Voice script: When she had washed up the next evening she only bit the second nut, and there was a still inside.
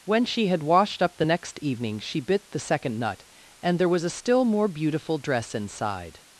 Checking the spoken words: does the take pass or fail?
fail